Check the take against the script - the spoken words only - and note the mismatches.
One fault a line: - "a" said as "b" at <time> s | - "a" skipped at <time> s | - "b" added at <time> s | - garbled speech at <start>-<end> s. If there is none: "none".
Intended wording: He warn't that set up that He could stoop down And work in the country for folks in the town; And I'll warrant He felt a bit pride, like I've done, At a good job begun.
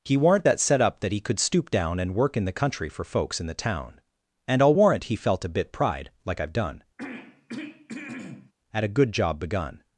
none